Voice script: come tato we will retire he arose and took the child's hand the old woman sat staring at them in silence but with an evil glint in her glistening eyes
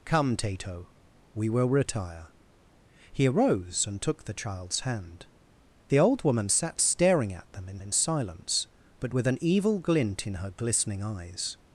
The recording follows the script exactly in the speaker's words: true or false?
false